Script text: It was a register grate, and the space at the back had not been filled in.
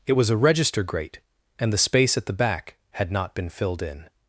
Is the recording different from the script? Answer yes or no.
no